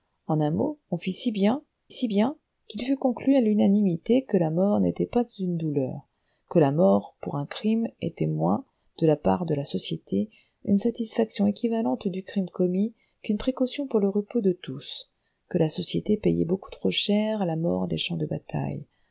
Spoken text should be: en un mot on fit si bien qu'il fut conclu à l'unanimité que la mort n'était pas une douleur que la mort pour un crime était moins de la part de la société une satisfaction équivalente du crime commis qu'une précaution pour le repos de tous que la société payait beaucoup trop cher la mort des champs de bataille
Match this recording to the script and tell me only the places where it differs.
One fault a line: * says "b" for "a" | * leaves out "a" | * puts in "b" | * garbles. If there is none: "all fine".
* puts in "si bien"